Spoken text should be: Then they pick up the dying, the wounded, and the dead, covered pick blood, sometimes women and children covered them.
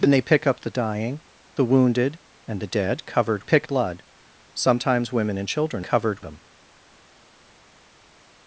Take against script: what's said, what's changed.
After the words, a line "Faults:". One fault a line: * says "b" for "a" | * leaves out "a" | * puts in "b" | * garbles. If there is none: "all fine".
Then they pick up the dying, the wounded, and the dead, covered pick blood, sometimes women and children covered them.
Faults:
all fine